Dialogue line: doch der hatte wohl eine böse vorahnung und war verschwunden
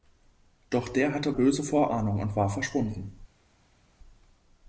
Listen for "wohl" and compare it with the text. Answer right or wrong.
wrong